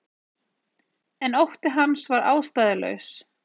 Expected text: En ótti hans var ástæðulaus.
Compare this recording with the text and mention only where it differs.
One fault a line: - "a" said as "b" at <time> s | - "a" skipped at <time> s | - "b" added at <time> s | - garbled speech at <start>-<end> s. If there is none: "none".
none